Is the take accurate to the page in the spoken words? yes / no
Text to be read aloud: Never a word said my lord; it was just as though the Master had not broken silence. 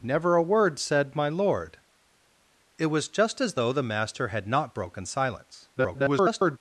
no